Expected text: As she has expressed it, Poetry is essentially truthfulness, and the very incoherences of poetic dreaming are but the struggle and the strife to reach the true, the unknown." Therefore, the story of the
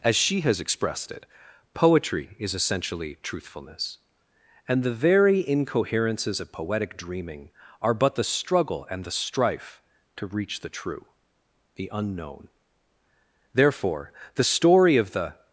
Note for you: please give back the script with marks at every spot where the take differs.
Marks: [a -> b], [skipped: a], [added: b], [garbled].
As she has expressed it, Poetry is essentially truthfulness, and the very incoherences of poetic dreaming are but the struggle and the strife to reach the true, the unknown." Therefore, the story of the